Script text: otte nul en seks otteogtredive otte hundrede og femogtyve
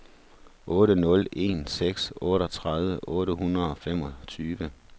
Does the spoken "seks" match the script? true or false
true